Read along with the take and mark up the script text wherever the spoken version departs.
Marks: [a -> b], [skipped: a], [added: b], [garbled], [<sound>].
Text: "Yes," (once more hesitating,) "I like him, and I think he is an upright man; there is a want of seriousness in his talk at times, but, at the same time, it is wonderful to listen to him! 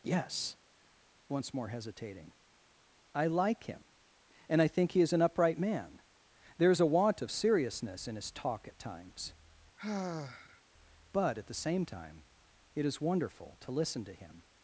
"Yes," (once more hesitating,) "I like him, and I think he is an upright man; there is a want of seriousness in his talk at times, [sigh] but, at the same time, it is wonderful to listen to him!